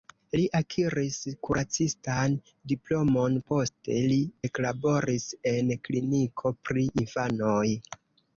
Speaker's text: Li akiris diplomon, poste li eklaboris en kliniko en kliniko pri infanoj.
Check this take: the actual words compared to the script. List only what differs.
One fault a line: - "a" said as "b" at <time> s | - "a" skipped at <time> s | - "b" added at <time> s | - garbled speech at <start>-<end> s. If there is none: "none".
- "kuracistan" added at 1.5 s
- "en kliniko" skipped at 6.5 s